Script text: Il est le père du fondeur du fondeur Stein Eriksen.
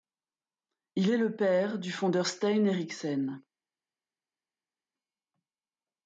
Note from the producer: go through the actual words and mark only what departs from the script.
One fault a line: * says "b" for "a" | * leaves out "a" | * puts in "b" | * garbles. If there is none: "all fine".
* leaves out "du fondeur"